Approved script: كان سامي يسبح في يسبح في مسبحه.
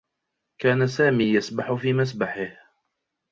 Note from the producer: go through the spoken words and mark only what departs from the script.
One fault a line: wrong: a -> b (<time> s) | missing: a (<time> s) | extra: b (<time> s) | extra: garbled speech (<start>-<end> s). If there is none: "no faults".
missing: يسبح في (1.9 s)